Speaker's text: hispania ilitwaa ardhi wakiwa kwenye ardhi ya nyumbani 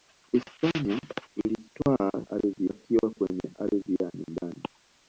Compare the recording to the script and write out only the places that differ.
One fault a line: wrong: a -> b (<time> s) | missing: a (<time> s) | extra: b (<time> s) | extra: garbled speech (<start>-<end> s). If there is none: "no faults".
no faults